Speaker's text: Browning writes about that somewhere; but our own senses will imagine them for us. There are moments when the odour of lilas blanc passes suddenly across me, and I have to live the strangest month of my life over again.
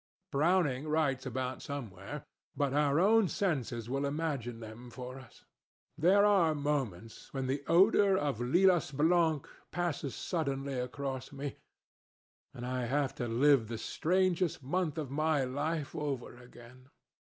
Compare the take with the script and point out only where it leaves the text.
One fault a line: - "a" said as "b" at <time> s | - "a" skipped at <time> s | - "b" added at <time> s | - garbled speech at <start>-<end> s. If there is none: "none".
- "that" skipped at 1.6 s